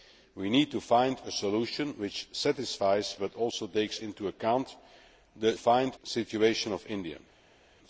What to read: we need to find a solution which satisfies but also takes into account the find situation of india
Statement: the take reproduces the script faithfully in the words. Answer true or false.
true